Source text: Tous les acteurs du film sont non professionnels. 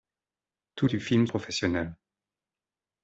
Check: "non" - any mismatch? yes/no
yes